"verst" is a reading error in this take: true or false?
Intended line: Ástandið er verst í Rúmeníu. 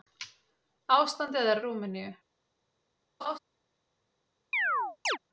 true